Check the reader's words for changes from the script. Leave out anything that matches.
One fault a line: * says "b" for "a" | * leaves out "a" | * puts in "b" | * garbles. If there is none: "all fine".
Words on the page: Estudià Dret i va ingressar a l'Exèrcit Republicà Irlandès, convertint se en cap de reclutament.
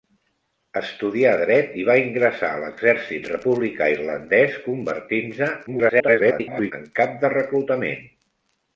* garbles